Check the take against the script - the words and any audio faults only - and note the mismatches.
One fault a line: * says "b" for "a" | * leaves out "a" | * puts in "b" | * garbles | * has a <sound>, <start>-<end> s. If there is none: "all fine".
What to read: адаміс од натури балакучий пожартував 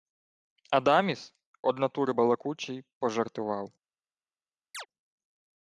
* has a chirp, 4.7-4.9 s